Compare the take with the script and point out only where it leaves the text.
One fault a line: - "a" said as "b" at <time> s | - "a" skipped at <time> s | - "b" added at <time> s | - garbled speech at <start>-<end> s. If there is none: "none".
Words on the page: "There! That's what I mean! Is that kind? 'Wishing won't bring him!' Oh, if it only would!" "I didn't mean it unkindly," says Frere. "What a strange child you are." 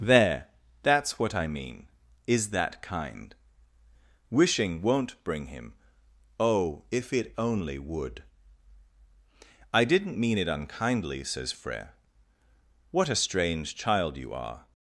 none